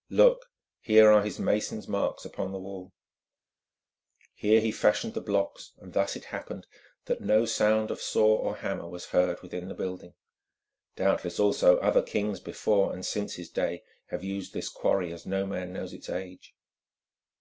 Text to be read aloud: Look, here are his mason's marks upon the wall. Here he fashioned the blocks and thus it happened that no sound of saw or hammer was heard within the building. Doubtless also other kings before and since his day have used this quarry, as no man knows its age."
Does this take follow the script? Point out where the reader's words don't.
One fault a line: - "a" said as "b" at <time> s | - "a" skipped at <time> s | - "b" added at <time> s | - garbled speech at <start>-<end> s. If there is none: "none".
none